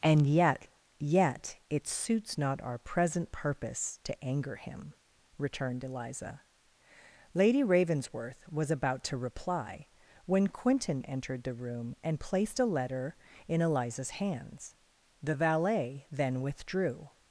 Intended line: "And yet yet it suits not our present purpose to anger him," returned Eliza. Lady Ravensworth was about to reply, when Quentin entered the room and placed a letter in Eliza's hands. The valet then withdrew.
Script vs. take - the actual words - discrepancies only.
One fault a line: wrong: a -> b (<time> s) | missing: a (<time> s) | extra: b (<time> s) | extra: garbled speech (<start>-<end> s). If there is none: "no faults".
no faults